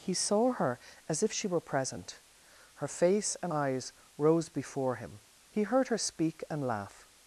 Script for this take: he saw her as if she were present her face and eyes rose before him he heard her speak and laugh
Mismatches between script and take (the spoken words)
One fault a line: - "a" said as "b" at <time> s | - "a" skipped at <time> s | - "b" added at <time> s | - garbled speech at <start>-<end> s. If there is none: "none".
none